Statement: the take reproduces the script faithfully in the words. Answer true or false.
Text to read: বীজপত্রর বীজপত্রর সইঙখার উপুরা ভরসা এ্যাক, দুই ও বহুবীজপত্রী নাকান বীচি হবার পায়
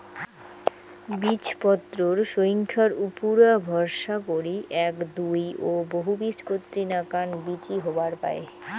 false